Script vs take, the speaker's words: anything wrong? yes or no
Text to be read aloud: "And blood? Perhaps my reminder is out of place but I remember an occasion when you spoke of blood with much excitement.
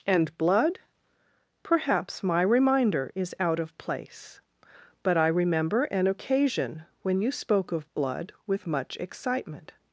no